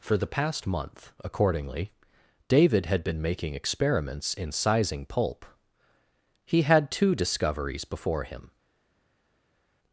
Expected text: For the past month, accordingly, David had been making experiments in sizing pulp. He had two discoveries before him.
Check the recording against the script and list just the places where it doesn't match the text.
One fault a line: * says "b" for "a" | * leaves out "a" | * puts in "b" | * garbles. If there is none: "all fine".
all fine